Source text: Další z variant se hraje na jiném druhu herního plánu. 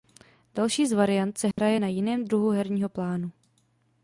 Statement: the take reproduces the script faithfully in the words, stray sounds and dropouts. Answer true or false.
false